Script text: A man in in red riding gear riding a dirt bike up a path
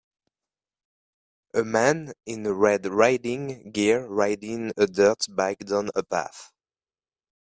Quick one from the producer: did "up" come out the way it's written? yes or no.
no